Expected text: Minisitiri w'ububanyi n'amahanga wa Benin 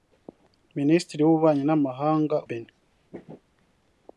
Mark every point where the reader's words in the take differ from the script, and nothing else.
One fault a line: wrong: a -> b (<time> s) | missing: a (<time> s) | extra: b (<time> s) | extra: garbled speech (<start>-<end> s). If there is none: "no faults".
missing: wa (2.4 s)